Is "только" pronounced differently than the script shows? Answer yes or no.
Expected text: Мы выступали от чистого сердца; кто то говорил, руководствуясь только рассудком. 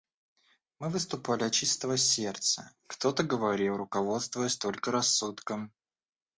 no